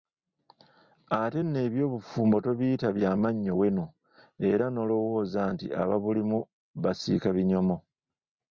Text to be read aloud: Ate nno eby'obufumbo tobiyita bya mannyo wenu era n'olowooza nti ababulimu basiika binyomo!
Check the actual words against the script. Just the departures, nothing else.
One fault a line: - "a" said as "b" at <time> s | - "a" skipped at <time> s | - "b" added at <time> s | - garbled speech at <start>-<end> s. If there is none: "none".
none